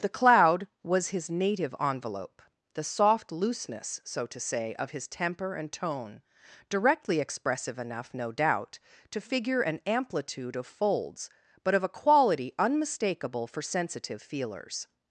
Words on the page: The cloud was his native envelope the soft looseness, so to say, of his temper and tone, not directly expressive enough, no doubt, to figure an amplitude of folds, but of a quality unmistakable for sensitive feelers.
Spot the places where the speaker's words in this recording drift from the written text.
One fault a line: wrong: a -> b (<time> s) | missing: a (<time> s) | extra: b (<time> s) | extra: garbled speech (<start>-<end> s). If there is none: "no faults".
missing: not (6.2 s)